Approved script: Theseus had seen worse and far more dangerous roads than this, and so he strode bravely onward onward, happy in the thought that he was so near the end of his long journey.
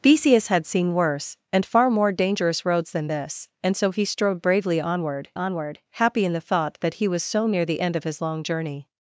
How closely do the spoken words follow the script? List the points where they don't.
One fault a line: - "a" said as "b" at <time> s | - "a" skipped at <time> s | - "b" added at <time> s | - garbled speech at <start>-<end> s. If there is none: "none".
none